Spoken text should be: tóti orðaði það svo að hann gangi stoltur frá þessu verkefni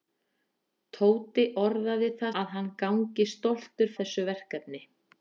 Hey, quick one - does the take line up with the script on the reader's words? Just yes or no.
no